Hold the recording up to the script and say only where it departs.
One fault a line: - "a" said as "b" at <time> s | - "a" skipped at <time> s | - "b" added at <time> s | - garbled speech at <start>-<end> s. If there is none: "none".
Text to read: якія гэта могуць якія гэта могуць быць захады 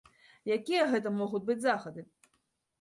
- "якія гэта могуць" skipped at 1.4 s